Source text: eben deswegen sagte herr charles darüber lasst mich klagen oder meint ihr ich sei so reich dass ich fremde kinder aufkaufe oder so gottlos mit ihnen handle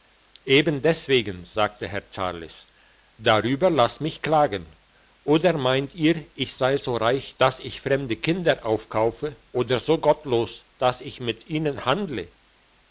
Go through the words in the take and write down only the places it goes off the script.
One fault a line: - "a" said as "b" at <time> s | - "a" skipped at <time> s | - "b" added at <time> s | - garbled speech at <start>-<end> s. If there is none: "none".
- "dass ich" added at 10.8 s